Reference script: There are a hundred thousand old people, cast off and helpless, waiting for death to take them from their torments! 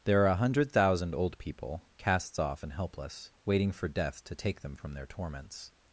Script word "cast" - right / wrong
wrong